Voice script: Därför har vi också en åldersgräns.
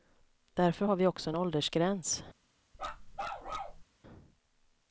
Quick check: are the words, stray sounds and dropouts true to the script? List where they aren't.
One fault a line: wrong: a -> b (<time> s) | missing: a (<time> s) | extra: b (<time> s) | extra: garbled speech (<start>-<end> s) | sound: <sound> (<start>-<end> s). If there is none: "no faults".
sound: bark (2.7-3.8 s)